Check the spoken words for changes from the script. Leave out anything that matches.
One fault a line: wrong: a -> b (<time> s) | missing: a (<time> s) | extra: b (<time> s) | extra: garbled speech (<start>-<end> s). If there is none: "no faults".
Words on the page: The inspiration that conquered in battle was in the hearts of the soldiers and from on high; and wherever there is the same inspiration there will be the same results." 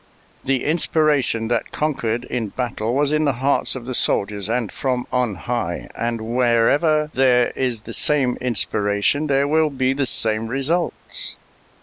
no faults